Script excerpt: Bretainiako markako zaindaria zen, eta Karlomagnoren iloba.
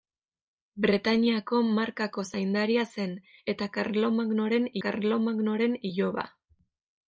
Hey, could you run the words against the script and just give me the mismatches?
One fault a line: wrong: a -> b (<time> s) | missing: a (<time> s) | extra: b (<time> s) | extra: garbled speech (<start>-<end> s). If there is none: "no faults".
extra: Karlomagnoren (4.9 s)